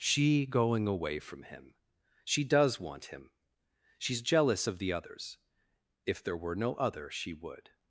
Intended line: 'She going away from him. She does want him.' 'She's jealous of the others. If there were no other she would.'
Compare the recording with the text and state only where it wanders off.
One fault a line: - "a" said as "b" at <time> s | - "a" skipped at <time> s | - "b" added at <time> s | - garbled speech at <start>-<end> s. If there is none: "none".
none